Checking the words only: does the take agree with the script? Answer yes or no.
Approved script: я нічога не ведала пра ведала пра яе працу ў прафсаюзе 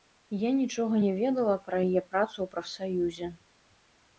no